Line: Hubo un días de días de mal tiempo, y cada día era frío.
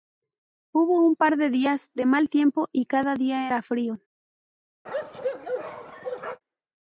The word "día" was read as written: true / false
true